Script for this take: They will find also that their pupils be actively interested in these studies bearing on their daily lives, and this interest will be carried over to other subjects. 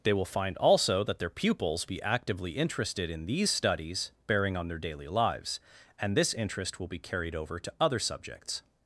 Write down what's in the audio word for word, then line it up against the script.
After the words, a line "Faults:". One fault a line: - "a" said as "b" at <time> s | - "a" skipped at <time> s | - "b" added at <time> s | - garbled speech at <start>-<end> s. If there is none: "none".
They will find also that their pupils be actively interested in these studies bearing on their daily lives, and this interest will be carried over to other subjects.
Faults:
none